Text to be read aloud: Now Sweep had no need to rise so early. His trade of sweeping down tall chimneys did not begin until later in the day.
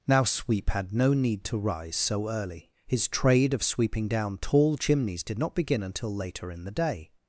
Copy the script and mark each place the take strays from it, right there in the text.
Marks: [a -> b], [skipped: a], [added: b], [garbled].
Now Sweep had no need to rise so early. His trade of sweeping down tall chimneys did not begin until later in the day.